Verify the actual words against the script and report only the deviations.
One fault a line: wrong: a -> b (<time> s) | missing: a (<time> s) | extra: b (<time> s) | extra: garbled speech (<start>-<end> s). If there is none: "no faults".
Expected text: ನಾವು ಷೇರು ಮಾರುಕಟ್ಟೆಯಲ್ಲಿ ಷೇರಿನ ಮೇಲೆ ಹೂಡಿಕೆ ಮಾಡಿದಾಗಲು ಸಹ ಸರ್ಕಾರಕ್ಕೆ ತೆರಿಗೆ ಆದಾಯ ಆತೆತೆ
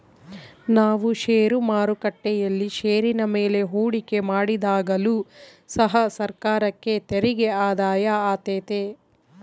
no faults